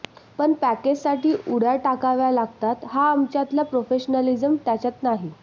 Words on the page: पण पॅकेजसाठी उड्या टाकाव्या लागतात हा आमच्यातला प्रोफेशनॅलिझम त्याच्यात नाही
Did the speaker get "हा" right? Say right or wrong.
right